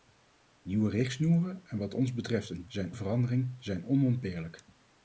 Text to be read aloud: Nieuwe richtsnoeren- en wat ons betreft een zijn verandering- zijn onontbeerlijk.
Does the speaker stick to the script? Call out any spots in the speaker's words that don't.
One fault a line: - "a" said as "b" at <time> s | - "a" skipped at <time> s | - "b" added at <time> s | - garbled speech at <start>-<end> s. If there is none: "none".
none